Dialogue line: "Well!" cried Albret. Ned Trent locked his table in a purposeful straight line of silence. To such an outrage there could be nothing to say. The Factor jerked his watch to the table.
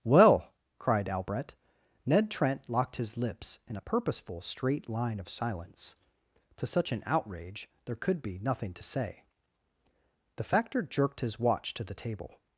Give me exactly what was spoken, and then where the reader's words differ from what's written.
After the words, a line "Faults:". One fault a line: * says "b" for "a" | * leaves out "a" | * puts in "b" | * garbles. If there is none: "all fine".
"Well!" cried Albret. Ned Trent locked his lips in a purposeful straight line of silence. To such an outrage there could be nothing to say. The Factor jerked his watch to the table.
Faults:
* says "lips" for "table"